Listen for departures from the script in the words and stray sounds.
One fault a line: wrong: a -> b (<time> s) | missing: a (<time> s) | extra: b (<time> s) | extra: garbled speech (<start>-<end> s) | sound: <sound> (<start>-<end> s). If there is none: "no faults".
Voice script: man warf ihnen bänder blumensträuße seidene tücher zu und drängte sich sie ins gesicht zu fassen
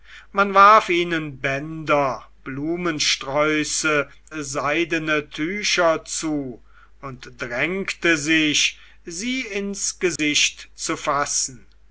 sound: dropout (10.2-10.2 s)